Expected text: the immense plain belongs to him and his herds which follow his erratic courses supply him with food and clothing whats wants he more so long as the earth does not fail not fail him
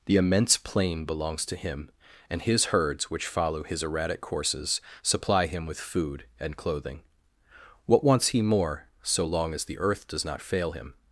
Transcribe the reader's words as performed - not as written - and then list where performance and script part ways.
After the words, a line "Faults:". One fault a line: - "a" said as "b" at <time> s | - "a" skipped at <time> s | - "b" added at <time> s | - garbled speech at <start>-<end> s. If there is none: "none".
the immense plain belongs to him and his herds which follow his erratic courses supply him with food and clothing what wants he more so long as the earth does not fail him
Faults:
- "whats" said as "what" at 7.9 s
- "not fail" skipped at 10.7 s